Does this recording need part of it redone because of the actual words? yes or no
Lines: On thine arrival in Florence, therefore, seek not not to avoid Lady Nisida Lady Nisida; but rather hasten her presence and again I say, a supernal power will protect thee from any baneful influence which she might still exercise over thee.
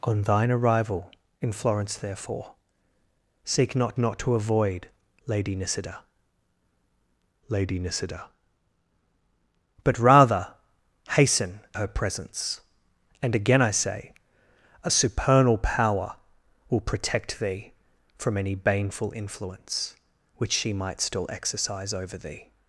no